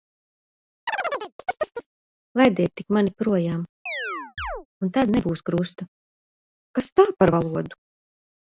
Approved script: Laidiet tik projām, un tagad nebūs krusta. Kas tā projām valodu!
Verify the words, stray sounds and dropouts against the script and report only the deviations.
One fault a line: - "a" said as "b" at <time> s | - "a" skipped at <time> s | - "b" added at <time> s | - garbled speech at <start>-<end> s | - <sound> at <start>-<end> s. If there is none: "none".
- chirp at 0.9-1.9 s
- "mani" added at 2.9 s
- chirp at 3.9-4.7 s
- "tagad" said as "tad" at 5.0 s
- "projām" said as "par" at 7.2 s